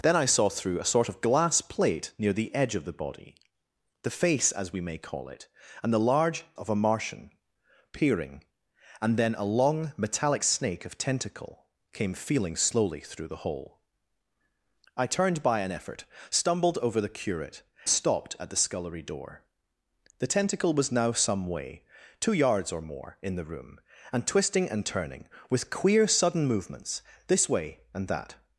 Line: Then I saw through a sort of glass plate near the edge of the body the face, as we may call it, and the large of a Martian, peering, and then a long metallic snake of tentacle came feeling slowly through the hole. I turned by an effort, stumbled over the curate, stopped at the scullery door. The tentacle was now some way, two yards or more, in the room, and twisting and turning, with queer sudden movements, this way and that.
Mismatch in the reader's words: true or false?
false